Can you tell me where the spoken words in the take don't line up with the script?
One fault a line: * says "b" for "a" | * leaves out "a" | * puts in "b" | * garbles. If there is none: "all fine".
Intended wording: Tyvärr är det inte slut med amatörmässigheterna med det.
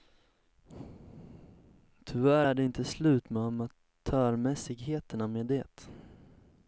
all fine